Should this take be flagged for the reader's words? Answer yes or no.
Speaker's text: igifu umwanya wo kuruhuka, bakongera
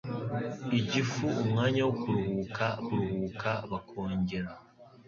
yes